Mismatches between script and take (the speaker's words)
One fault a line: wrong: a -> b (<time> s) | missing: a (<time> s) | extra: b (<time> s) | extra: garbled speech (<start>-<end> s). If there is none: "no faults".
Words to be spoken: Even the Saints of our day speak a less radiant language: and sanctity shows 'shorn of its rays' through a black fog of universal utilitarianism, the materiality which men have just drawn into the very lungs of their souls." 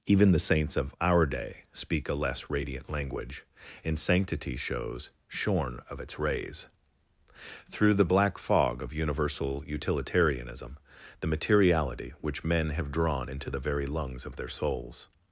wrong: a -> the (7.9 s)
missing: just (12.9 s)